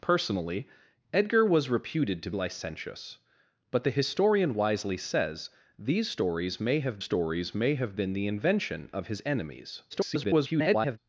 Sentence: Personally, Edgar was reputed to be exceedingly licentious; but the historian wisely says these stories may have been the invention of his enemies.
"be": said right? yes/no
no